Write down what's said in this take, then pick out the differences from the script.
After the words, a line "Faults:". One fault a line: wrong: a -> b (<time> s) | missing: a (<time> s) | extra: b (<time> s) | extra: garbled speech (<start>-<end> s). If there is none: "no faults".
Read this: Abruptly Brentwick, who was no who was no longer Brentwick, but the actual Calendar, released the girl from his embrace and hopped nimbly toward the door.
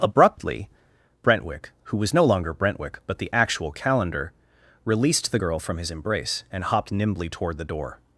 Abruptly Brentwick, who was no longer Brentwick, but the actual Calendar, released the girl from his embrace and hopped nimbly toward the door.
Faults:
missing: who was no (2.2 s)